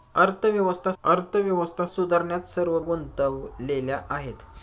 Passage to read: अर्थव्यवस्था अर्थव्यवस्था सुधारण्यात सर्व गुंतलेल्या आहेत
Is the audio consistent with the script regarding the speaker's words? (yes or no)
yes